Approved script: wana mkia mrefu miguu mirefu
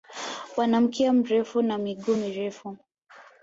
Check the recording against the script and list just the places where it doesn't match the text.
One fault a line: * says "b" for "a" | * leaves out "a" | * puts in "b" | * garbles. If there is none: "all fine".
* puts in "na"